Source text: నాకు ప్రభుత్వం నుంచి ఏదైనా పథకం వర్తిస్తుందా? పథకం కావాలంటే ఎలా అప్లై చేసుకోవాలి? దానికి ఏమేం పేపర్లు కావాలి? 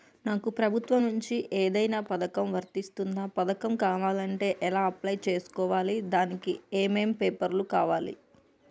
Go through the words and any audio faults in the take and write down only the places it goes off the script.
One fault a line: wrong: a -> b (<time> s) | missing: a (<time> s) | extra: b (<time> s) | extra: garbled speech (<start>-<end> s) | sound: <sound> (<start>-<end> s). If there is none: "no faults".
no faults